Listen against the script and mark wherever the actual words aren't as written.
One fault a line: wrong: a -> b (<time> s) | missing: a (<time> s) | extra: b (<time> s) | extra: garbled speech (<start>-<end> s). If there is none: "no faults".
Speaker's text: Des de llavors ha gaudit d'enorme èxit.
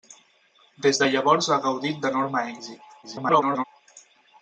extra: garbled speech (3.0-3.6 s)